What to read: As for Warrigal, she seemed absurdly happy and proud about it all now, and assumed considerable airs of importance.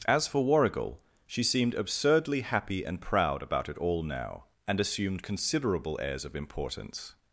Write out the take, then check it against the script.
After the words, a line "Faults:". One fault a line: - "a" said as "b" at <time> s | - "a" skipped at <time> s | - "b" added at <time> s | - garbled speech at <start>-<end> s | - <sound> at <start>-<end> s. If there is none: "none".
As for Warrigal, she seemed absurdly happy and proud about it all now, and assumed considerable airs of importance.
Faults:
none